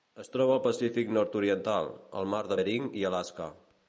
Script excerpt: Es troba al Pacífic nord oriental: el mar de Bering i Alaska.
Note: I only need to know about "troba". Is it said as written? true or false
true